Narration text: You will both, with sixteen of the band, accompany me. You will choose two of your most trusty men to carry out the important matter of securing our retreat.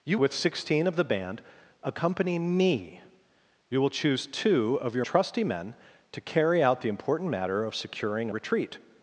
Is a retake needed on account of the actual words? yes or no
yes